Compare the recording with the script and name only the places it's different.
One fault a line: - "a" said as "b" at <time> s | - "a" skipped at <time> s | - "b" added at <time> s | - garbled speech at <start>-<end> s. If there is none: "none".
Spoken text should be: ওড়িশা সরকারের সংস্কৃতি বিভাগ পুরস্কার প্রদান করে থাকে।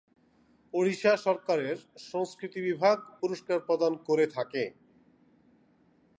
none